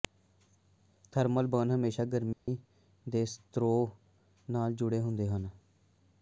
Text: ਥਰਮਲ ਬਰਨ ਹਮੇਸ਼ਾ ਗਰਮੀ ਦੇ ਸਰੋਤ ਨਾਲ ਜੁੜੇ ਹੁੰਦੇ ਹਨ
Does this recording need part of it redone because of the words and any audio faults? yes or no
yes